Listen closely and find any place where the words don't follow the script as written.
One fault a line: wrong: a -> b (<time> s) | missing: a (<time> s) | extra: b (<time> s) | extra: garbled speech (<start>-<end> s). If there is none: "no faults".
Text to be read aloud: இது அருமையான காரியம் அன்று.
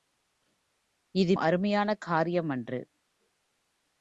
no faults